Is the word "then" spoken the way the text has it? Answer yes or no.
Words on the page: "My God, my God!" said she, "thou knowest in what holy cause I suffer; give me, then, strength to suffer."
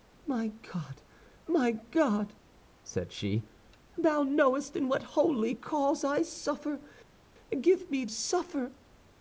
no